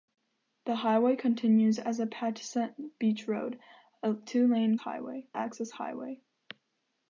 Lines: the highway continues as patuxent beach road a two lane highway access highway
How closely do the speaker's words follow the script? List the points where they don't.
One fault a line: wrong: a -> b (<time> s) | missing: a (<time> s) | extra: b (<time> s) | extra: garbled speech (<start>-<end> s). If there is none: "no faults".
no faults